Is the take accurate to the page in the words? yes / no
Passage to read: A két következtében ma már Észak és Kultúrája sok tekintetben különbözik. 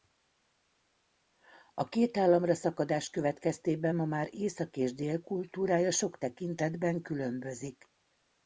no